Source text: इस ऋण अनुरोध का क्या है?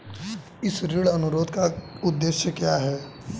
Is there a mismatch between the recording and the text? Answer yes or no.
yes